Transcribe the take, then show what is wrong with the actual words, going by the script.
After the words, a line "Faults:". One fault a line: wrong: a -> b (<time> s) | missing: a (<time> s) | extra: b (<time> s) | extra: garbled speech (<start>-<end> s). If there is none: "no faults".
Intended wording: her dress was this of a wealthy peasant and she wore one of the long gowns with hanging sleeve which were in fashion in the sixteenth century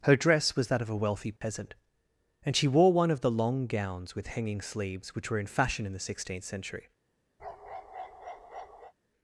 her dress was that of a wealthy peasant and she wore one of the long gowns with hanging sleeves which were in fashion in the sixteenth century
Faults:
wrong: this -> that (0.7 s)
wrong: sleeve -> sleeves (4.6 s)